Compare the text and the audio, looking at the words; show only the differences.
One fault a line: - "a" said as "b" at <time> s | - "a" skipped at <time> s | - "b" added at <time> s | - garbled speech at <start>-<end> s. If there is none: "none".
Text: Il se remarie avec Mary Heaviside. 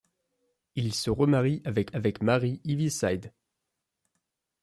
- "avec" added at 1.9 s